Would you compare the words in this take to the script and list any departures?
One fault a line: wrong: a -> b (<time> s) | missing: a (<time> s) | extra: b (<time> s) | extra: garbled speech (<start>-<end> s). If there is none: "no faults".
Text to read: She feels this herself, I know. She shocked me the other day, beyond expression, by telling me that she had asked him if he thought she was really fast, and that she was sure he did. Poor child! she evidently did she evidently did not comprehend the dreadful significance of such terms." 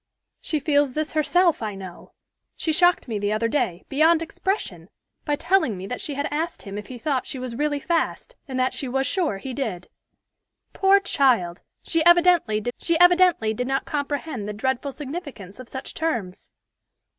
no faults